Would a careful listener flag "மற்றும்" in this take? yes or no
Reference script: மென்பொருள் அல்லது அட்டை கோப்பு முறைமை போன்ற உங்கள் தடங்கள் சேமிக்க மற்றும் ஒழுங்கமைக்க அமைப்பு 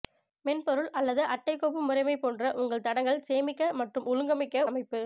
no